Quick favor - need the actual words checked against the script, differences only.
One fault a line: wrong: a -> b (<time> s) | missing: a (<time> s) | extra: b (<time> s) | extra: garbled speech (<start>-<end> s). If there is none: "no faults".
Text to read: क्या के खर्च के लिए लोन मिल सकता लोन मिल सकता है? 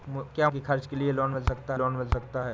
no faults